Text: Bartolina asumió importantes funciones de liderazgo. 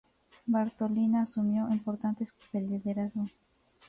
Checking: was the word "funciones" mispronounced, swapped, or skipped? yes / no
yes